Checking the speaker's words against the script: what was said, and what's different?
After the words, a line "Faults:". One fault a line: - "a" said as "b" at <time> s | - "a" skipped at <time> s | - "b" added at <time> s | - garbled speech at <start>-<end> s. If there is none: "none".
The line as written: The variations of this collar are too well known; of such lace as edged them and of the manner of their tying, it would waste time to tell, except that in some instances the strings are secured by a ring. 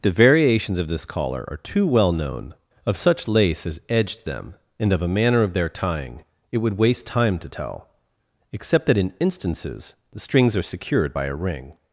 The variations of this collar are too well known; of such lace as edged them and of a manner of their tying, it would waste time to tell, except that in instances the strings are secured by a ring.
Faults:
- "the" said as "a" at 5.0 s
- "some" skipped at 9.1 s